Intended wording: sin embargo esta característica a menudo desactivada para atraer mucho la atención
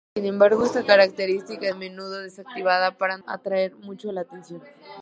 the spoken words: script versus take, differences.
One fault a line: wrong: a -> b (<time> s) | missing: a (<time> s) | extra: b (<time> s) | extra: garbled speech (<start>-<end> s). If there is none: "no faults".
no faults